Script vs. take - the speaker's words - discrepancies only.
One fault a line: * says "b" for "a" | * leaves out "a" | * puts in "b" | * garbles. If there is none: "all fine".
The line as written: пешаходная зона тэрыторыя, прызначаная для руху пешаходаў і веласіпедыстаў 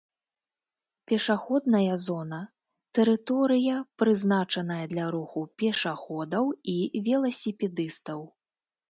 all fine